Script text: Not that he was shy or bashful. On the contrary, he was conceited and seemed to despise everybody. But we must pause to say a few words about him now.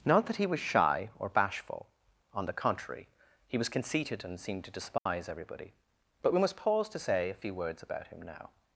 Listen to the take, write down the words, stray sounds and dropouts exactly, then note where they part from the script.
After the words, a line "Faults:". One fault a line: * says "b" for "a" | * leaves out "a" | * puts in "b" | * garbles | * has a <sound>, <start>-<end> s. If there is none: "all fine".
Not that he was shy or bashful. On the contrary, he was conceited and seemed to despise everybody. But we must pause to say a few words about him now.
Faults:
* has a dropout, 5.0-5.1 s